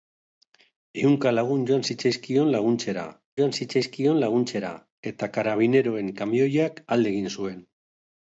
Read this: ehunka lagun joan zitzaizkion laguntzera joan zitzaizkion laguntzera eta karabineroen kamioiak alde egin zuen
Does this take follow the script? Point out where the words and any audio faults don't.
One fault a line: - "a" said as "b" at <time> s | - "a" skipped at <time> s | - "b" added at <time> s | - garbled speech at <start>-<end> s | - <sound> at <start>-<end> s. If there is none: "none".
none